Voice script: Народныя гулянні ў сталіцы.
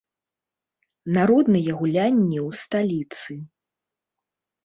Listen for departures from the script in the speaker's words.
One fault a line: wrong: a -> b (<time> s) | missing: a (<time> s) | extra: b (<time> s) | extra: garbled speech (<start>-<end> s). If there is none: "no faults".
no faults